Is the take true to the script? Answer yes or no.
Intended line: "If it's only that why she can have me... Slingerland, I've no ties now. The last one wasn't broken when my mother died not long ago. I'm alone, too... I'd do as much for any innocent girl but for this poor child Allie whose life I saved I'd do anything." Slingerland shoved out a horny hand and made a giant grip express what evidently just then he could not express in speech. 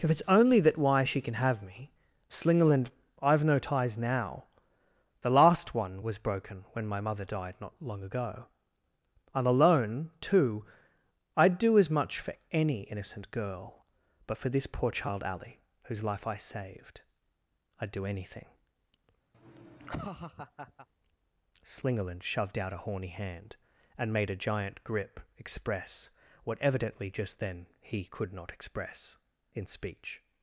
no